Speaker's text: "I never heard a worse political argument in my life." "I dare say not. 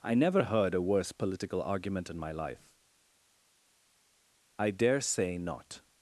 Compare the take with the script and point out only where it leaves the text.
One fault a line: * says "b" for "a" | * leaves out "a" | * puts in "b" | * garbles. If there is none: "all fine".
all fine